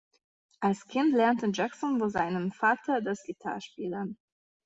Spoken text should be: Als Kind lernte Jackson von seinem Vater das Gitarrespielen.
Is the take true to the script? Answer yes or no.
yes